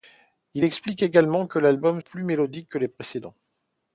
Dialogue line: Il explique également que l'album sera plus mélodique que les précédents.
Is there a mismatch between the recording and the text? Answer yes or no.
yes